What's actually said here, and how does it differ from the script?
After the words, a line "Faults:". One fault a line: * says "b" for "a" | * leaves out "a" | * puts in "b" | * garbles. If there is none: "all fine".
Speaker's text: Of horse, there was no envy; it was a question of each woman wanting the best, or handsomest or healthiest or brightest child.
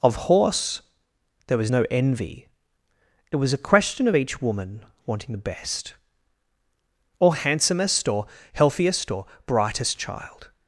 Of horse, there was no envy; it was a question of each woman wanting the best, or handsomest or healthiest or brightest child.
Faults:
all fine